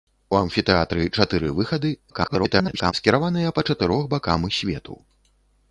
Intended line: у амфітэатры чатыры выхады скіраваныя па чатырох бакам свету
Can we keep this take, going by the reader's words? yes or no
no